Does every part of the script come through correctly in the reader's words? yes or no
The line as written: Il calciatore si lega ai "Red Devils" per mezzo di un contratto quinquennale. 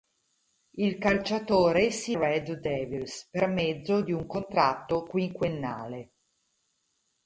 no